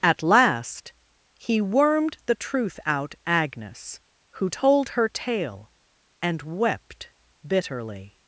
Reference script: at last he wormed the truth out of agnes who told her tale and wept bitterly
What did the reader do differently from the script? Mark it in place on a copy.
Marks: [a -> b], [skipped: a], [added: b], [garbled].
at last he wormed the truth out [skipped: of] agnes who told her tale and wept bitterly